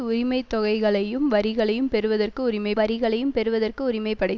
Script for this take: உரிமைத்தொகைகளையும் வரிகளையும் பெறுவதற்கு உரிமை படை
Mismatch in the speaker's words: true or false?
true